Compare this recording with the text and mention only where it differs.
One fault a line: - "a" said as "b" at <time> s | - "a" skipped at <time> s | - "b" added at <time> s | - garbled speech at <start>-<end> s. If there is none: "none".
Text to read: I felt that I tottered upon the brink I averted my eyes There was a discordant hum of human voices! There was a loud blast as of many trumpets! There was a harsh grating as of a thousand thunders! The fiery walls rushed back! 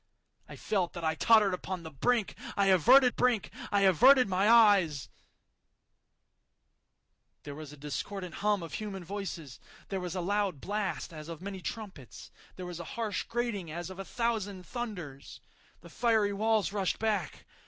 - "brink I averted" added at 3.1 s